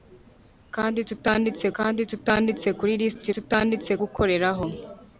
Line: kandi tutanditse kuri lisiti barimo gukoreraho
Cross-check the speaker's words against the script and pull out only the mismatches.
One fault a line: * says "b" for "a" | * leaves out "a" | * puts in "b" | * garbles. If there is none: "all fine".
* puts in "kandi tutanditse"
* says "tutanditse" for "barimo"